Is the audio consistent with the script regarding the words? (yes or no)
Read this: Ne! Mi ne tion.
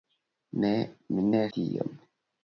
yes